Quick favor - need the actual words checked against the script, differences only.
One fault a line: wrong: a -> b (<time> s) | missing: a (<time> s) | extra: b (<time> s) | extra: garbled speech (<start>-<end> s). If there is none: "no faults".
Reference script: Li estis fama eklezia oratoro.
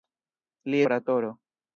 missing: estis fama eklezia (0.8 s)